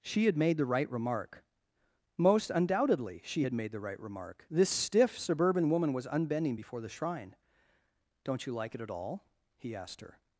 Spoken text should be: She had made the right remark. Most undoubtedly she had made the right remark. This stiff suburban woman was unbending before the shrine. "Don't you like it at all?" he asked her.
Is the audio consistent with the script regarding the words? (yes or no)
yes